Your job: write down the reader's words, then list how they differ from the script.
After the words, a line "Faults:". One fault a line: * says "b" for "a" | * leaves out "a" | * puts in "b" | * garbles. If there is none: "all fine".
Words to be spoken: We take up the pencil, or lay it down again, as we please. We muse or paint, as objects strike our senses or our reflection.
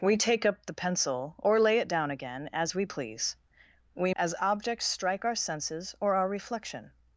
We take up the pencil, or lay it down again, as we please. We as objects strike our senses or our reflection.
Faults:
* leaves out "muse or paint"